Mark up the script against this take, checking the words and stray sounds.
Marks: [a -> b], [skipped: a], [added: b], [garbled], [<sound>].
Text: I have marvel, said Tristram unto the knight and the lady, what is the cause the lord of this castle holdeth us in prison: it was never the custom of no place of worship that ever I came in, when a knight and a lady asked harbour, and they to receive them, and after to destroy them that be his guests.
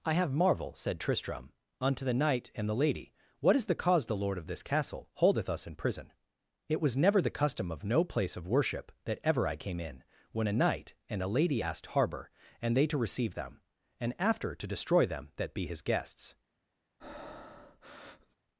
I have marvel, said Tristram unto the knight and the lady, what is the cause the lord of this castle holdeth us in prison: it was never the custom of no place of worship that ever I came in, when a knight and a lady asked harbour, and they to receive them, and after to destroy them that be his guests. [breath]